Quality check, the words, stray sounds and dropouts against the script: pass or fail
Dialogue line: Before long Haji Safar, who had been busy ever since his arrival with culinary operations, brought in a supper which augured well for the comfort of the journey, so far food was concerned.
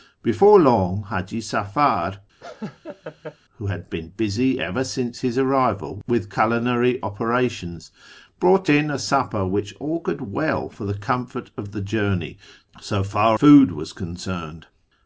fail